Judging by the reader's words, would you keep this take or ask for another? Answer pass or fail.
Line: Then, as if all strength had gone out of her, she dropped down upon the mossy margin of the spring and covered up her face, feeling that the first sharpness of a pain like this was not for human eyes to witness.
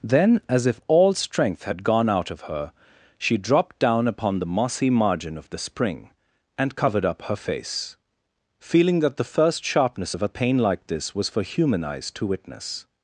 fail